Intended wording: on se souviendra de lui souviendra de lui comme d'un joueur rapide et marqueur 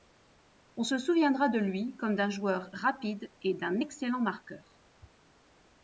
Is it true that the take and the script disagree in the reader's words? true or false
true